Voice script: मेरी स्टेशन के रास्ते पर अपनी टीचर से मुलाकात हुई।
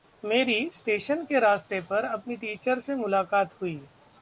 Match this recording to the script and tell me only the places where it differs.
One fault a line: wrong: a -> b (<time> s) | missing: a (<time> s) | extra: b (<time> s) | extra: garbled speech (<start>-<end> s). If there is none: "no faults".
no faults